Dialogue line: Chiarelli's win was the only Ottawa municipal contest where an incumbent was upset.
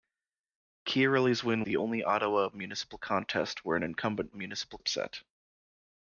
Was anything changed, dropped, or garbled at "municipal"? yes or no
no